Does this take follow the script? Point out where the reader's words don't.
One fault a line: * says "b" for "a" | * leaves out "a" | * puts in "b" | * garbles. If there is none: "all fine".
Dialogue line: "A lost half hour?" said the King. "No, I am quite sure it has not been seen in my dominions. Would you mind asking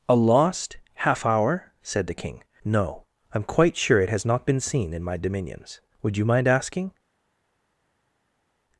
all fine